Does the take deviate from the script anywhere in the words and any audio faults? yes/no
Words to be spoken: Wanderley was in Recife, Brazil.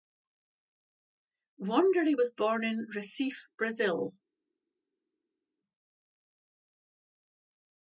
yes